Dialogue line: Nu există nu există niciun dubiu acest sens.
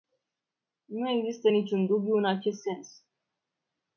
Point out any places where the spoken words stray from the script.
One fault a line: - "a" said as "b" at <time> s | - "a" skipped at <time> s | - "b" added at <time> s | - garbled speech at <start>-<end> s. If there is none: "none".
- "nu există" skipped at 1.5 s
- "în" added at 2.1 s